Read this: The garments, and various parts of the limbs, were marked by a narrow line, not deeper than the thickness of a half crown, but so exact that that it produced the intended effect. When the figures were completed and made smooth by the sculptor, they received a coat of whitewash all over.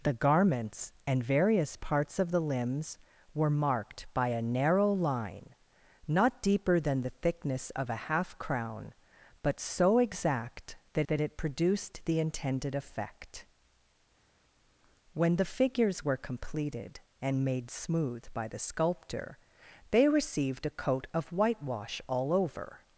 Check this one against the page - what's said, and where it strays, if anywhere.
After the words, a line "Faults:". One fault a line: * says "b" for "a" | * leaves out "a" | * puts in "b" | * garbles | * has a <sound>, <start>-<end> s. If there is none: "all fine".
The garments, and various parts of the limbs, were marked by a narrow line, not deeper than the thickness of a half crown, but so exact that that it produced the intended effect. When the figures were completed and made smooth by the sculptor, they received a coat of whitewash all over.
Faults:
all fine